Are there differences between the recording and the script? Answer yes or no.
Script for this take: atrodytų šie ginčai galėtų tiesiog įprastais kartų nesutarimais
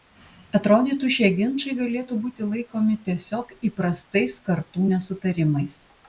yes